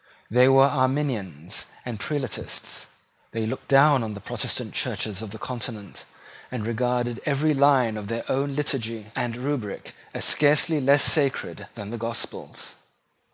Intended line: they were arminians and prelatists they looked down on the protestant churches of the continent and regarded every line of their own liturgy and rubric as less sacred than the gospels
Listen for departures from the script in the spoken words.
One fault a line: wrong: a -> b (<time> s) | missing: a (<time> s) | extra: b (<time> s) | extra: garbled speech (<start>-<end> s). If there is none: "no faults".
extra: scarcely (10.2 s)